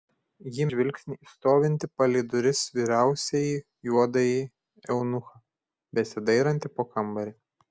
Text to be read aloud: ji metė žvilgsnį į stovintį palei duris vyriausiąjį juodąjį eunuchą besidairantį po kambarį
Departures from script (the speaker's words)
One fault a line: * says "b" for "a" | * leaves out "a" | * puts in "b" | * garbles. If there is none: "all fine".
* leaves out "metė"